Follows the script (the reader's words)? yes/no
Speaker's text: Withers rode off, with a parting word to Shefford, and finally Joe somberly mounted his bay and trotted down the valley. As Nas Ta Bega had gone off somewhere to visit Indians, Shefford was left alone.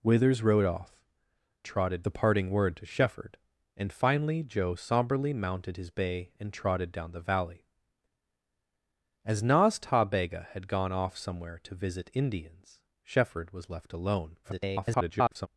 no